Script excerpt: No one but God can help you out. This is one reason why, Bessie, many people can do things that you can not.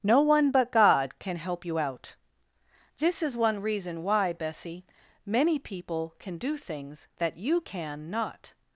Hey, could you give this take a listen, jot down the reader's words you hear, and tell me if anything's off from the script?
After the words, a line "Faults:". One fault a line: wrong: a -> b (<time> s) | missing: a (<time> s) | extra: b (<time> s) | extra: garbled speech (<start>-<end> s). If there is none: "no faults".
No one but God can help you out. This is one reason why, Bessie, many people can do things that you can not.
Faults:
no faults